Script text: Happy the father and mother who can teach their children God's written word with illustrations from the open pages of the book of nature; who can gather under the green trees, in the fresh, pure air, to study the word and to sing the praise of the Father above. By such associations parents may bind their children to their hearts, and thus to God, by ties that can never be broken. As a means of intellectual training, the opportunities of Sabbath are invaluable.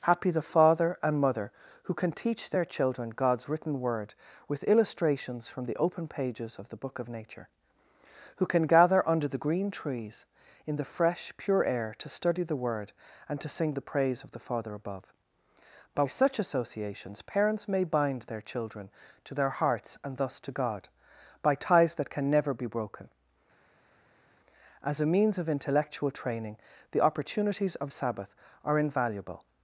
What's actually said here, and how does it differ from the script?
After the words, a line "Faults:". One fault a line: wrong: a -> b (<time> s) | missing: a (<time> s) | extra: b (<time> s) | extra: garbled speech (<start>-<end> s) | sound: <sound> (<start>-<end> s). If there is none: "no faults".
Happy the father and mother who can teach their children God's written word with illustrations from the open pages of the book of nature; who can gather under the green trees, in the fresh, pure air, to study the word and to sing the praise of the Father above. By such associations parents may bind their children to their hearts, and thus to God, by ties that can never be broken. As a means of intellectual training, the opportunities of Sabbath are invaluable.
Faults:
no faults